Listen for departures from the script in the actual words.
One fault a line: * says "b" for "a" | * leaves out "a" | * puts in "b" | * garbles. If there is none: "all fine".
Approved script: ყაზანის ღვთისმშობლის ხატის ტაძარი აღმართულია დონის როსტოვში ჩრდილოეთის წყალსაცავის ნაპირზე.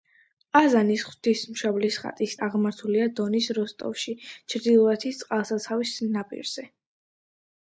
* leaves out "ტაძარი"